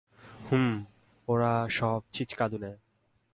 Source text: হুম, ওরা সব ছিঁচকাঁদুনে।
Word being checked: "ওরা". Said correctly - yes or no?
yes